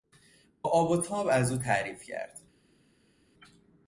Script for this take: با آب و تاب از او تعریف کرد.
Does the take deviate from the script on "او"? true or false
false